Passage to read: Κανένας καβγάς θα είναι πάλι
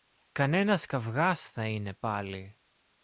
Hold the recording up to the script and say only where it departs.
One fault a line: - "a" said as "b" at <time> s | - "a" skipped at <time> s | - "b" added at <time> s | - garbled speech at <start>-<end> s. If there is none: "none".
none